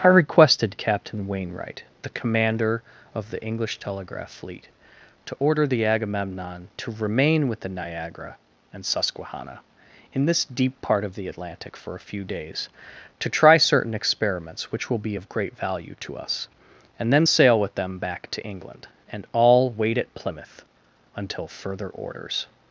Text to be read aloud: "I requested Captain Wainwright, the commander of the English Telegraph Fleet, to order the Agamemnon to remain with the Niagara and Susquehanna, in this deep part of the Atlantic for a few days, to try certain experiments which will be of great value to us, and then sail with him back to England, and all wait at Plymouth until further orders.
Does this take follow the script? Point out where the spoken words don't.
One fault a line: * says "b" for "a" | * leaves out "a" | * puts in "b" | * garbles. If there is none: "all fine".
* says "them" for "him"